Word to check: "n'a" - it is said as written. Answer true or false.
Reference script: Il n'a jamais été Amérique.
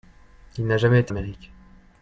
true